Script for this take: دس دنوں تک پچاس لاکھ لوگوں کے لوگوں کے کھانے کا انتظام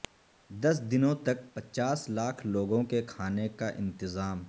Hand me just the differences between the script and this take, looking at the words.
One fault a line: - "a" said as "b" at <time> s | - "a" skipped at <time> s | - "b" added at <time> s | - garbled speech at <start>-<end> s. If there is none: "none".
- "لوگوں کے" skipped at 3.0 s